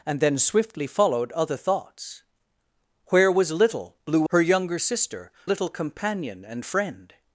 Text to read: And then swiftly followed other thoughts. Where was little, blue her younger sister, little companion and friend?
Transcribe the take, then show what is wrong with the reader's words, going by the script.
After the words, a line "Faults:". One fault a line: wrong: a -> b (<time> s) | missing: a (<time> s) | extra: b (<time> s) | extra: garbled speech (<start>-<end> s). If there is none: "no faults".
And then swiftly followed other thoughts. Where was little, blue her younger sister, little companion and friend?
Faults:
no faults